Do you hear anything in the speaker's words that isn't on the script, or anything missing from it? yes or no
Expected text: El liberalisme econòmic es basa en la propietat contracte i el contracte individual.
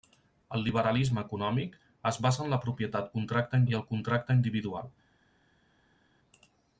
no